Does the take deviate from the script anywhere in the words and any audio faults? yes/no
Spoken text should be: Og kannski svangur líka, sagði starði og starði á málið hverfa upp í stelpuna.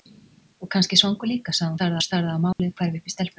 yes